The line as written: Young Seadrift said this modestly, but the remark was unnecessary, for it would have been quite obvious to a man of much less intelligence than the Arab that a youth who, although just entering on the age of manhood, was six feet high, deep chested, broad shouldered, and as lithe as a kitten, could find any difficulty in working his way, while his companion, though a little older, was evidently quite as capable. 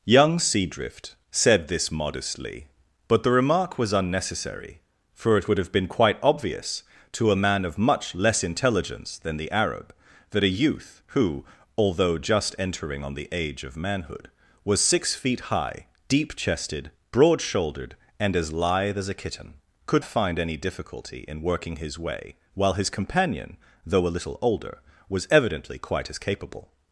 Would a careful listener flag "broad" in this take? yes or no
no